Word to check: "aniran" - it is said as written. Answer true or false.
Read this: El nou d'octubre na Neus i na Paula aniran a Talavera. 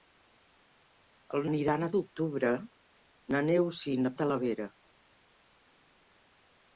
false